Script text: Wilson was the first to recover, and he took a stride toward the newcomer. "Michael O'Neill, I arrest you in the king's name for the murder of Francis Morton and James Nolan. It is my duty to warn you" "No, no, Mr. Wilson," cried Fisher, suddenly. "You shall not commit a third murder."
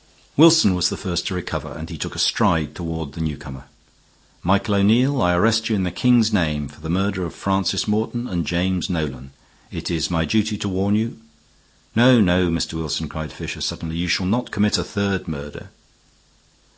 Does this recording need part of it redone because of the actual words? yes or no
no